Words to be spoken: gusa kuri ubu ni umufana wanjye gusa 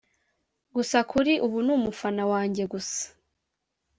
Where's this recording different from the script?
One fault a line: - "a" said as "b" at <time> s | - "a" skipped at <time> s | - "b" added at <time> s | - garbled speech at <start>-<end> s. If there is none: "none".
none